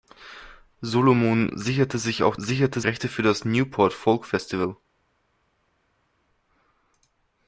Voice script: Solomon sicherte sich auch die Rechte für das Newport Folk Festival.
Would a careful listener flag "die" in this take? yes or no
yes